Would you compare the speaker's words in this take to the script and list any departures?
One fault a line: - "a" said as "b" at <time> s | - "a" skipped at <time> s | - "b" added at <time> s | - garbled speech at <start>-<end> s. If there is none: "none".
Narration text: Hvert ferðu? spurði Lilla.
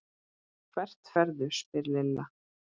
none